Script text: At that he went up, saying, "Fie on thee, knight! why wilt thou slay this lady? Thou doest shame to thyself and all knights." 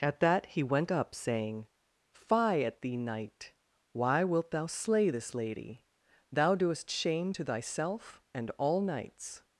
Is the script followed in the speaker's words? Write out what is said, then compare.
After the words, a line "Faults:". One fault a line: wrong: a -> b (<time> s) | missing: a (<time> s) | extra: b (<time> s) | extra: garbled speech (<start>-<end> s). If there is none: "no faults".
At that he went up, saying, "Fie at thee, knight! why wilt thou slay this lady? Thou doest shame to thyself and all knights."
Faults:
wrong: on -> at (2.6 s)